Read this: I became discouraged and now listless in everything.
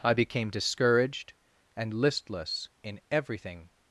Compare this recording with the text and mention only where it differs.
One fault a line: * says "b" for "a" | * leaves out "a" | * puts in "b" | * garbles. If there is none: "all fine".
* leaves out "now"